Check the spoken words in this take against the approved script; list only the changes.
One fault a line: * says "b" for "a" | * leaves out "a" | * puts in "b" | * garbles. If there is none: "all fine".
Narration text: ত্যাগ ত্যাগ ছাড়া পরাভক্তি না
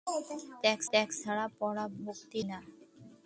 all fine